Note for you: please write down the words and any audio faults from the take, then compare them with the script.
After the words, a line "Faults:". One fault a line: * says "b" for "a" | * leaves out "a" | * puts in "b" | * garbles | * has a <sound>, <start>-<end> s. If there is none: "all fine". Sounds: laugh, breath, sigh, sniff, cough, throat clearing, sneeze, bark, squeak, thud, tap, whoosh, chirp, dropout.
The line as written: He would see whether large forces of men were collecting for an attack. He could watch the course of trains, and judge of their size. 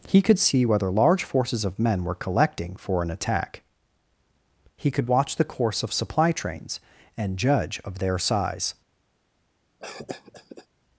He could see whether large forces of men were collecting for an attack. He could watch the course of supply trains, and judge of their size.
Faults:
* says "could" for "would"
* puts in "supply"
* has a cough, 9.8-10.7 s